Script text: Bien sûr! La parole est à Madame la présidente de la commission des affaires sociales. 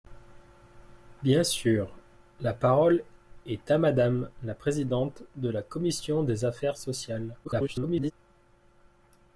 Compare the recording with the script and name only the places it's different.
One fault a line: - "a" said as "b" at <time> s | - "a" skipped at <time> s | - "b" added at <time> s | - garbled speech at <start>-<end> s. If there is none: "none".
- garbled speech at 7.4-8.1 s